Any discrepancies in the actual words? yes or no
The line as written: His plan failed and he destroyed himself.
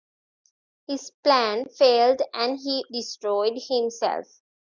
no